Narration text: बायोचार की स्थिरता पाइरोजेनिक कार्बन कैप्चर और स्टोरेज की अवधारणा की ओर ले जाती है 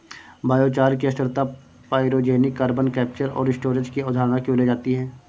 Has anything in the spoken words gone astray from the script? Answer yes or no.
no